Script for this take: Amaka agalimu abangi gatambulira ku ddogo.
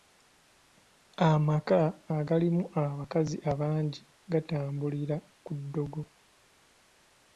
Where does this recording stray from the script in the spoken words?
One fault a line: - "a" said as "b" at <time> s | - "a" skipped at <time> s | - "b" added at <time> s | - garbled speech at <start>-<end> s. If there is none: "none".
- "abakazi" added at 2.8 s